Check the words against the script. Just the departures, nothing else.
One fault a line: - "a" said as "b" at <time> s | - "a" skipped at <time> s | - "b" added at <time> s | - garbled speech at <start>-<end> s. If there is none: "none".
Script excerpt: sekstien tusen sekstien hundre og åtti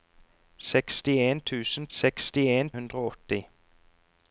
none